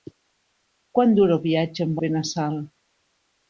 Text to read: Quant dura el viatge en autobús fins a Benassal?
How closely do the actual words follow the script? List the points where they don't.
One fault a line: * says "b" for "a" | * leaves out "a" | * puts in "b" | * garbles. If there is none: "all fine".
* leaves out "autobús fins"